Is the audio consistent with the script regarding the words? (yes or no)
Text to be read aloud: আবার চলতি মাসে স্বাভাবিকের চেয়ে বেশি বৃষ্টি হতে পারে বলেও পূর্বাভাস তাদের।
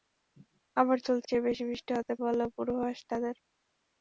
no